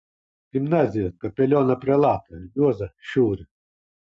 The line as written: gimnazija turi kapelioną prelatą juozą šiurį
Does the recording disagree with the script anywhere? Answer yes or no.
yes